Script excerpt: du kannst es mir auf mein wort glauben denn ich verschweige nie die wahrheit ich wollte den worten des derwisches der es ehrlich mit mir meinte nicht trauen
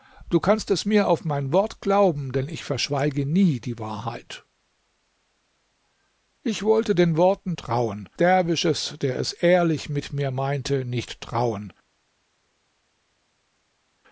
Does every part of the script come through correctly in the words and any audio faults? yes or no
no